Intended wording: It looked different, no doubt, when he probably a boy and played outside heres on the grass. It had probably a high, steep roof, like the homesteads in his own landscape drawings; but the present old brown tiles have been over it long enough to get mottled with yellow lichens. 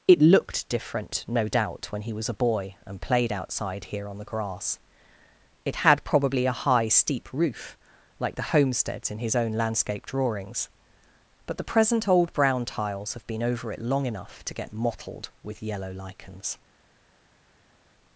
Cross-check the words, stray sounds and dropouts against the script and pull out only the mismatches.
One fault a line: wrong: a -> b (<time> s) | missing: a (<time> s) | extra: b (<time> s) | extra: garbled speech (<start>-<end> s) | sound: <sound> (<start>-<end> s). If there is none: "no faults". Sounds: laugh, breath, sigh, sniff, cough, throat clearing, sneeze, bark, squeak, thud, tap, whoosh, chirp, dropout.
wrong: probably -> was (2.1 s)
wrong: heres -> here (3.9 s)